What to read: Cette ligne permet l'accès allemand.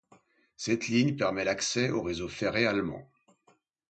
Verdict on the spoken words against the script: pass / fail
fail